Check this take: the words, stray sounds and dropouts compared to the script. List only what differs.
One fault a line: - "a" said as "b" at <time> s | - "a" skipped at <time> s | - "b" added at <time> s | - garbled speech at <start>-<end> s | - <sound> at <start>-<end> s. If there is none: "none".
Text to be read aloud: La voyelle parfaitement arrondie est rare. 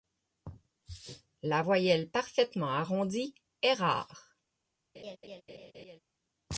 - laugh at 4.9-6.0 s